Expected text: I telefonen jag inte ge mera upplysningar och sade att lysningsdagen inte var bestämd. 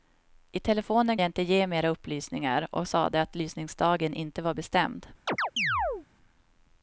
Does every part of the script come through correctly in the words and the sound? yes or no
no